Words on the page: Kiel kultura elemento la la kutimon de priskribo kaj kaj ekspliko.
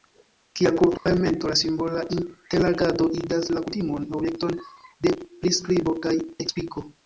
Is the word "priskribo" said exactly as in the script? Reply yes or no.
yes